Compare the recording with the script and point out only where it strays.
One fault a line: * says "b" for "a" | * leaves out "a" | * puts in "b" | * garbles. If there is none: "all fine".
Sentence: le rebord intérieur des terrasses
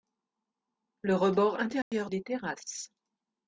all fine